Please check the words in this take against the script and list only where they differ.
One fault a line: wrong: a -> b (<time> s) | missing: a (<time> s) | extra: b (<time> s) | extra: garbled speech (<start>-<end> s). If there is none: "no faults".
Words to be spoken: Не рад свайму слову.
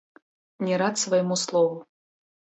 no faults